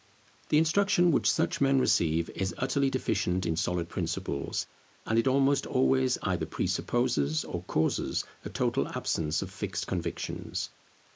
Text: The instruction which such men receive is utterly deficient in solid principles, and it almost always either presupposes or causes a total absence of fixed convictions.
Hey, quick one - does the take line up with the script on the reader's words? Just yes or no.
yes